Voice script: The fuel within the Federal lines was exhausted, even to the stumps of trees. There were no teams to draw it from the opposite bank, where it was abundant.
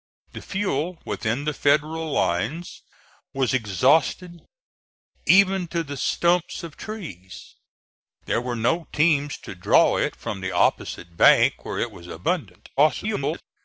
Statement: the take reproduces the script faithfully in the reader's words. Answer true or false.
false